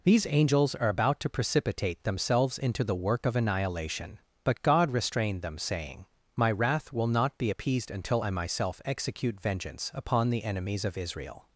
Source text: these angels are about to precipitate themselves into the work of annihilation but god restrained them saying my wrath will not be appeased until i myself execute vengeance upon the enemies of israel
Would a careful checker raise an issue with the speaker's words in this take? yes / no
no